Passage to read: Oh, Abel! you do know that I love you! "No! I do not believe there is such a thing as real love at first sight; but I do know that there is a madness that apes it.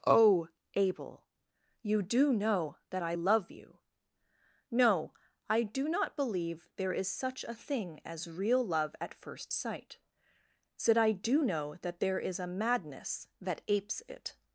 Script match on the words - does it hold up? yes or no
no